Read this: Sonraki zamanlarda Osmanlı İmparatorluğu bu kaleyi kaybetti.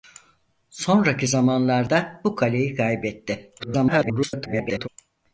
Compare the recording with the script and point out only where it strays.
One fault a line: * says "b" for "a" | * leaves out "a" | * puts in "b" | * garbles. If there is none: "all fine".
* leaves out "Osmanlı İmparatorluğu"
* garbles